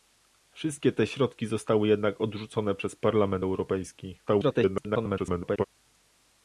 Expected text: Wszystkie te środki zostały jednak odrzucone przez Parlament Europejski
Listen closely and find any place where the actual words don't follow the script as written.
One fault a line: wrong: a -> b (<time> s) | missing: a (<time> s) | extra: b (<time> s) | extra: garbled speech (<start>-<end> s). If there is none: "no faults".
extra: garbled speech (4.3-5.6 s)